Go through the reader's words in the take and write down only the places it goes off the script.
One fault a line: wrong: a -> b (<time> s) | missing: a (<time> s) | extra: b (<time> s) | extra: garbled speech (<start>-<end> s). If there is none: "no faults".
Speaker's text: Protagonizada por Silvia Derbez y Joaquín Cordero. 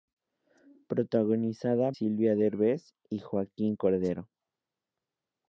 missing: por (1.9 s)